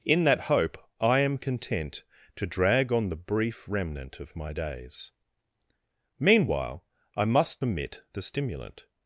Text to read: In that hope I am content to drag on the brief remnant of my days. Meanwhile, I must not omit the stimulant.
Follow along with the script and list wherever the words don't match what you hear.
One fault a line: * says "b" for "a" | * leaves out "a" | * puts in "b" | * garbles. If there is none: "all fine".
* leaves out "not"